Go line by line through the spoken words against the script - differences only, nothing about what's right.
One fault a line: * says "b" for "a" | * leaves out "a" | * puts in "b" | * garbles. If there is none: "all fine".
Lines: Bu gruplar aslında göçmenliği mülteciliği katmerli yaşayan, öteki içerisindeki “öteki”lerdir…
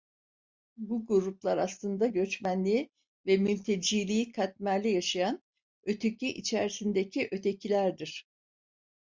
* puts in "ve"